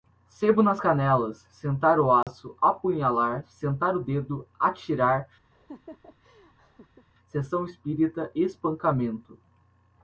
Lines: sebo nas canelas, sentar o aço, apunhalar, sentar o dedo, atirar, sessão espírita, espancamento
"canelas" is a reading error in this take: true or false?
false